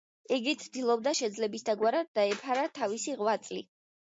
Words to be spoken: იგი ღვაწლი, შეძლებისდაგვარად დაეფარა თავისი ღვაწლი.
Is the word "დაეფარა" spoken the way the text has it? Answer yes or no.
yes